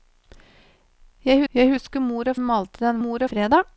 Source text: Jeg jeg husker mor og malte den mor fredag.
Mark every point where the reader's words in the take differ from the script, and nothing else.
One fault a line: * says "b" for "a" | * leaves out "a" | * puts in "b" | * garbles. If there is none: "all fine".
all fine